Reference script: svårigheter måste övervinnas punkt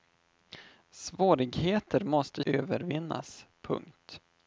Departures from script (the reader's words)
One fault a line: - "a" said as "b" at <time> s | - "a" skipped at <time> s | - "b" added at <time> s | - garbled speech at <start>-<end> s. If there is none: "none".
none